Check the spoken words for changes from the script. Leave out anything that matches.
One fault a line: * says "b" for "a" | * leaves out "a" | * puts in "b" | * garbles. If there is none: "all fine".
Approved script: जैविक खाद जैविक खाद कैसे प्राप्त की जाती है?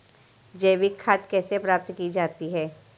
* leaves out "जैविक खाद"